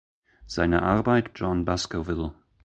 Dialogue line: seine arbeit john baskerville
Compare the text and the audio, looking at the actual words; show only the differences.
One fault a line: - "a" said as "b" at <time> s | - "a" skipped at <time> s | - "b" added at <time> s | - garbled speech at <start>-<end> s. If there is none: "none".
none